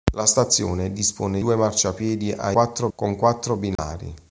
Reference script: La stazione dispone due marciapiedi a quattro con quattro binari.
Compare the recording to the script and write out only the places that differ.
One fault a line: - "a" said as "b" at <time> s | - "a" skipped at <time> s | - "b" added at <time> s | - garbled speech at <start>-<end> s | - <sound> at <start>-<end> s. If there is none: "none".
- dropout at 3.8-3.8 s